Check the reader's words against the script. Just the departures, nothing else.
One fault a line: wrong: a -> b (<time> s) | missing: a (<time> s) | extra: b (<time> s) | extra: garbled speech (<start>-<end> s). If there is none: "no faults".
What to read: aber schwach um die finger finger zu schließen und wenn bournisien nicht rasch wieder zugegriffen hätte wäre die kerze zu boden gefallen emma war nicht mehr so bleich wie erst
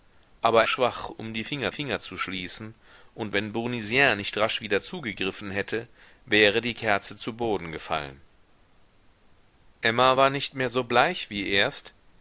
no faults